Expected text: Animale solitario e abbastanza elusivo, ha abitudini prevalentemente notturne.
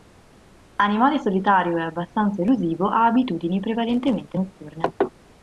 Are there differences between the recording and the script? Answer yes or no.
no